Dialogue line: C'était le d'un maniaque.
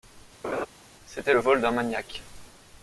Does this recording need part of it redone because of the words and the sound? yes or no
yes